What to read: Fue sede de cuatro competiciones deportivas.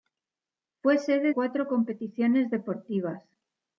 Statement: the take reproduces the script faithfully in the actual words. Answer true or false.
false